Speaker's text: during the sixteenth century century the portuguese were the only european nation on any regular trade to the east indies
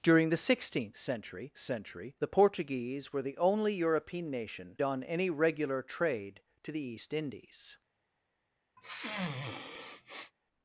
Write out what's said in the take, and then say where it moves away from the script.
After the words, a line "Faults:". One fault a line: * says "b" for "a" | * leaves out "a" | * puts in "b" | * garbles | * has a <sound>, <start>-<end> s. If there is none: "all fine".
during the sixteenth century century the portuguese were the only european nation on any regular trade to the east indies
Faults:
* has a sniff, 8.8-10.3 s